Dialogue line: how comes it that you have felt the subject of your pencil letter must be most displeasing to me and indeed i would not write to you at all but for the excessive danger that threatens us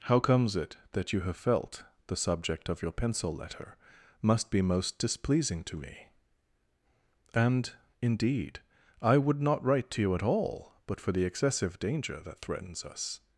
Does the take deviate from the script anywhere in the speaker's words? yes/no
no